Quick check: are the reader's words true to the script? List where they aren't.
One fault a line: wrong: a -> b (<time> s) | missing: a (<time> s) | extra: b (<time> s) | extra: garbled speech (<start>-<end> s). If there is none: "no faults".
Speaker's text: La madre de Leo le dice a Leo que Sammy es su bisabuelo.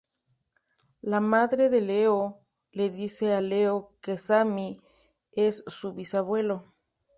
no faults